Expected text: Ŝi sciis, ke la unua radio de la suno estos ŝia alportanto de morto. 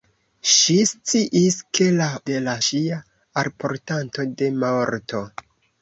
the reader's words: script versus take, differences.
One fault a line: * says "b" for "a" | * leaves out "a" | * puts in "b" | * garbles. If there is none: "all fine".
* leaves out "unua radio"
* leaves out "suno estos"